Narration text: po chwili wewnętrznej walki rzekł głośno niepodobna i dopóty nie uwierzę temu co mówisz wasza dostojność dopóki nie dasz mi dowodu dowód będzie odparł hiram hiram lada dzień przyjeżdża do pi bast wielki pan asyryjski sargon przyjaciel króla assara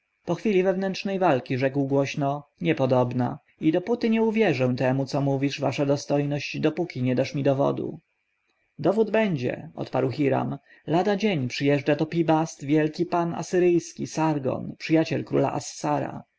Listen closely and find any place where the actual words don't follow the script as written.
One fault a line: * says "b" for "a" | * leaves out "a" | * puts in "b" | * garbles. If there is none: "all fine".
* leaves out "hiram"